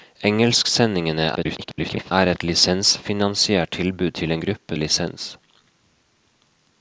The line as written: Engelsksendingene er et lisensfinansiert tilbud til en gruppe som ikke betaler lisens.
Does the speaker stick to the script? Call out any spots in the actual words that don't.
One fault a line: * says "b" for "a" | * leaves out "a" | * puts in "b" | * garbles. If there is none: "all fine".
* garbles
* leaves out "som ikke betaler"